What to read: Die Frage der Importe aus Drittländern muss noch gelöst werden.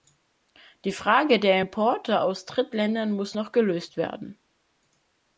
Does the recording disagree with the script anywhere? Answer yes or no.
no